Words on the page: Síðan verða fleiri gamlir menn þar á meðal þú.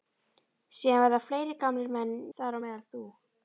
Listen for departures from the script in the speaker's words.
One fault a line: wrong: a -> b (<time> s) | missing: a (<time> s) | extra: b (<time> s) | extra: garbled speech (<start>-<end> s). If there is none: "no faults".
no faults